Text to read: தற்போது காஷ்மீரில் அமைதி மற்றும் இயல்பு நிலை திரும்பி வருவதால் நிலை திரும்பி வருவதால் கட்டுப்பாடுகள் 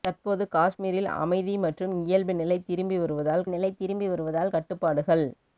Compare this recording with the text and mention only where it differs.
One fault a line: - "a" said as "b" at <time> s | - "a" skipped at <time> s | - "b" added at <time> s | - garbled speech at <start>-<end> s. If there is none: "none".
none